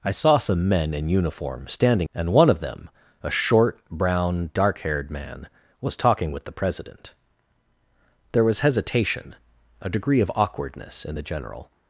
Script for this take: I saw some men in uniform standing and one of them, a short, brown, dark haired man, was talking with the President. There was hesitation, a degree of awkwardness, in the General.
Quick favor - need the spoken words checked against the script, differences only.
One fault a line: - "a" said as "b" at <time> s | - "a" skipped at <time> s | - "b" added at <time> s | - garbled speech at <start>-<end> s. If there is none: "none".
none